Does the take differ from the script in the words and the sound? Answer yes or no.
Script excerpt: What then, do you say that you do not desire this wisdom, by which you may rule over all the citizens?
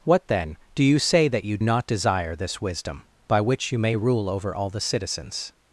yes